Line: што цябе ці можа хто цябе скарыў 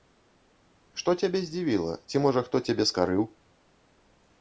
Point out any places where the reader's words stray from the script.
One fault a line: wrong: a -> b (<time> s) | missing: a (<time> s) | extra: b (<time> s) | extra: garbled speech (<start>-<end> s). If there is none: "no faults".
extra: здзівіла (1.5 s)